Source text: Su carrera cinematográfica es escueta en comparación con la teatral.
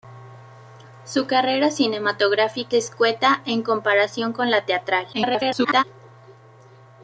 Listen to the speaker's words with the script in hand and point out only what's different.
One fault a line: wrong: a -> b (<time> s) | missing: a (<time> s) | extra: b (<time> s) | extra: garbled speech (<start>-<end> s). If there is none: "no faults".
missing: es (2.8 s)
extra: garbled speech (5.1-5.8 s)